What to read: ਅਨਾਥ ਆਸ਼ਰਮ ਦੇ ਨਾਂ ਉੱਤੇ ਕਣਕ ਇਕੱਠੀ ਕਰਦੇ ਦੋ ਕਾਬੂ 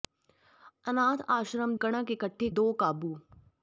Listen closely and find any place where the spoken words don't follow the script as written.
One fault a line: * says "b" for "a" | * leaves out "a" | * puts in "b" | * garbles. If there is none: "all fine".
* leaves out "ਦੇ ਨਾਂ ਉੱਤੇ"
* leaves out "ਕਰਦੇ"